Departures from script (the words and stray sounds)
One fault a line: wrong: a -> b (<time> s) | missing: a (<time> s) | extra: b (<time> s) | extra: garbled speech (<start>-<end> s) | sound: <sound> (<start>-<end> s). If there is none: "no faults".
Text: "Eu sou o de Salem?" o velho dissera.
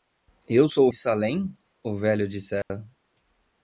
sound: dropout (2.6-2.7 s)